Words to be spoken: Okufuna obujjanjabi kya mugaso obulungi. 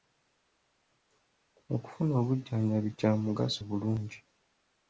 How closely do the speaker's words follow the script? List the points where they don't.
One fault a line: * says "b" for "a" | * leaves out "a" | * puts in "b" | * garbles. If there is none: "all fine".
all fine